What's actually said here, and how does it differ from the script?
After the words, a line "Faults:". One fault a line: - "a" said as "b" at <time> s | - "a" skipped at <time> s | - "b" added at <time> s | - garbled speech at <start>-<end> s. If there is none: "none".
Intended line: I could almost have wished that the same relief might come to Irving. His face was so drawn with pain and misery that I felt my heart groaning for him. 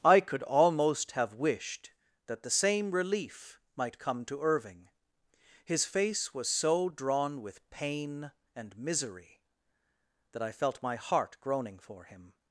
I could almost have wished that the same relief might come to Irving. His face was so drawn with pain and misery that I felt my heart groaning for him.
Faults:
none